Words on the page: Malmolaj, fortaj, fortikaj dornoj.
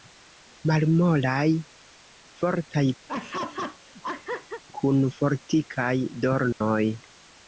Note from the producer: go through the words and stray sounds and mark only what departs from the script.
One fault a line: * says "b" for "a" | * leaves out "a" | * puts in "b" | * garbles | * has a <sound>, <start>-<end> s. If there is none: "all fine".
* has a laugh, 3.1-4.6 s
* puts in "kun"
* has a dropout, 6.5-6.6 s